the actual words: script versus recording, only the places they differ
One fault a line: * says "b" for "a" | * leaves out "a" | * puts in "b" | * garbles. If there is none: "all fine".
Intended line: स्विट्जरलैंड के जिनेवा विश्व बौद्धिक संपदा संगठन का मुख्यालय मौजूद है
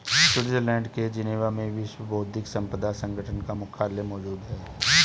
* puts in "में"